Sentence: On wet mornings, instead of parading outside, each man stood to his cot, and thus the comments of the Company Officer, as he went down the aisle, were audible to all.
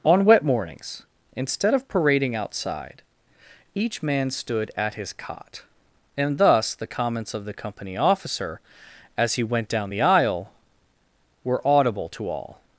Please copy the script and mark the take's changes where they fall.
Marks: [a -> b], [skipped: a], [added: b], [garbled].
On wet mornings, instead of parading outside, each man stood [to -> at] his cot, and thus the comments of the Company Officer, as he went down the aisle, were audible to all.